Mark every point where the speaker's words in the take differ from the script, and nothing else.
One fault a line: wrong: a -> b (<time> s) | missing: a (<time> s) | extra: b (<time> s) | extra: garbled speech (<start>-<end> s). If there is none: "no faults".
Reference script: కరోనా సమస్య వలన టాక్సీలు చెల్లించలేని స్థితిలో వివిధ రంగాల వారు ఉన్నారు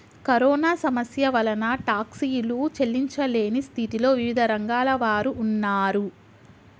no faults